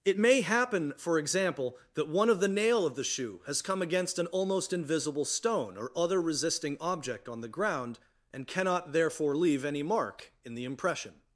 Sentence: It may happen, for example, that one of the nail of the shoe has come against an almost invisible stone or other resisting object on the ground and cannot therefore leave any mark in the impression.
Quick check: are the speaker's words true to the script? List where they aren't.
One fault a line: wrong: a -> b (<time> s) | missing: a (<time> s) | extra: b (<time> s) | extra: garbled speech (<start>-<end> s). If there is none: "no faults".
no faults